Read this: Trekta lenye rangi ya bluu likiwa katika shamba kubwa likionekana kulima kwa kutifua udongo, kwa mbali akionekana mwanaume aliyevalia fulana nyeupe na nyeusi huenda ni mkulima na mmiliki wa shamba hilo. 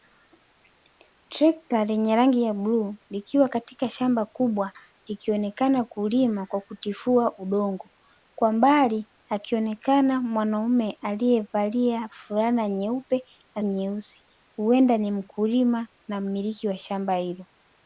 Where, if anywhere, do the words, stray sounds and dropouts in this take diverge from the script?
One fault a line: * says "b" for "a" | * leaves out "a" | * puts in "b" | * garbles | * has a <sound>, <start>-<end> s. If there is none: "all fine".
all fine